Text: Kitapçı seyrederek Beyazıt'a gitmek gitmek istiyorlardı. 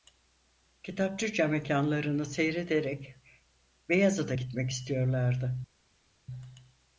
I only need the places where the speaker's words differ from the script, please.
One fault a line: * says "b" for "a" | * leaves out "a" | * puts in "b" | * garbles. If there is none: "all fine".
* puts in "camekânlarını"
* leaves out "gitmek"